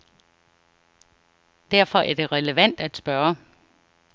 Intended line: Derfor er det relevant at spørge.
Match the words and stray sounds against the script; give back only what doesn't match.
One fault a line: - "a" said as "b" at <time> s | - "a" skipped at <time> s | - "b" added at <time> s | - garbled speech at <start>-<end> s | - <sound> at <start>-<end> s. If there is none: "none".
none